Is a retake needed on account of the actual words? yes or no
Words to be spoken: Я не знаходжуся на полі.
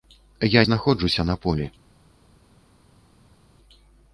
yes